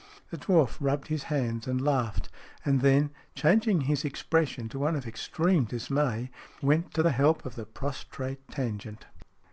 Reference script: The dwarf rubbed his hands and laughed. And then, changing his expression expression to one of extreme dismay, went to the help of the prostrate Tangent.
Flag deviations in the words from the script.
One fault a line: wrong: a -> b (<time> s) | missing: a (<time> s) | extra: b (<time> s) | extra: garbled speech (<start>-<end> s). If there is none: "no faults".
missing: expression (4.7 s)